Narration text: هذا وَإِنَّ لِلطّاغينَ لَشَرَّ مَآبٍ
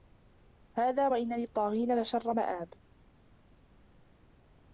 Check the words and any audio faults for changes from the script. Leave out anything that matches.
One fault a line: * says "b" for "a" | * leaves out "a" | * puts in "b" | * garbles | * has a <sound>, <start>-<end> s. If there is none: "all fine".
all fine